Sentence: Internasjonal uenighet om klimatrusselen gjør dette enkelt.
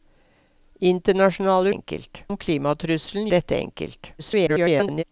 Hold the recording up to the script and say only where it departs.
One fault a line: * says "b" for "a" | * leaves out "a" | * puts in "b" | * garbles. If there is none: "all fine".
* says "enkelt" for "uenighet"
* leaves out "gjør"
* garbles